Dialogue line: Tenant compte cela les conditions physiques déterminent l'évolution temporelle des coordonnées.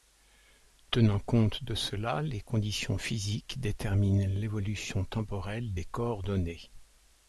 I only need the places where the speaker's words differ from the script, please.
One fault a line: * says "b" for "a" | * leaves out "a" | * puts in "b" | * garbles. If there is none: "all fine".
* puts in "de"